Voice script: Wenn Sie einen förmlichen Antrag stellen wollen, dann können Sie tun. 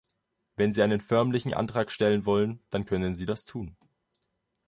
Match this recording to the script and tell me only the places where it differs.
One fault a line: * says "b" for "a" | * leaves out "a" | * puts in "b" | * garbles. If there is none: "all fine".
* puts in "das"